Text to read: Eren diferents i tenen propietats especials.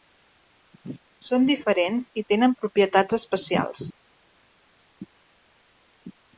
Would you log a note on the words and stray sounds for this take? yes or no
yes